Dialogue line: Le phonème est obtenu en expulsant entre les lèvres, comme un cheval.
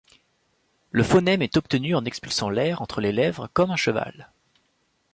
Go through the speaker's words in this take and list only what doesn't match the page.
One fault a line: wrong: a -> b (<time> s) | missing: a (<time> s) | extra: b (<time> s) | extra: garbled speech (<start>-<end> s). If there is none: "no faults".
extra: l'air (2.5 s)